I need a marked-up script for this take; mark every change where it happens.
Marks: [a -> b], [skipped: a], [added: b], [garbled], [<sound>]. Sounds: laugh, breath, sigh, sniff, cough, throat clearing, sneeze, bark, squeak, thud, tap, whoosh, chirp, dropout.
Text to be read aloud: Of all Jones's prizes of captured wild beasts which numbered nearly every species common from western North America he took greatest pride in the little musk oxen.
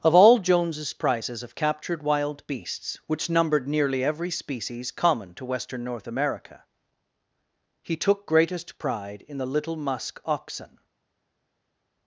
Of all Jones's prizes of captured wild beasts which numbered nearly every species common [from -> to] western North America he took greatest pride in the little musk oxen.